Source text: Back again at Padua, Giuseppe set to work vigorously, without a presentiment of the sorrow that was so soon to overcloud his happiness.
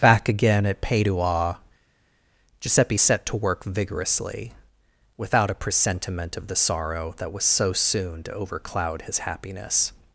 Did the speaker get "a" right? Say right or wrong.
right